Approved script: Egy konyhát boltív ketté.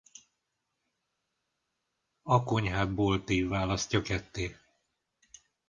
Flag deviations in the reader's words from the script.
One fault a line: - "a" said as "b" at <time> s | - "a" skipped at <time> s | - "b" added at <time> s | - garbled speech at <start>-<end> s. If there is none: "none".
- "Egy" said as "A" at 2.2 s
- "választja" added at 3.5 s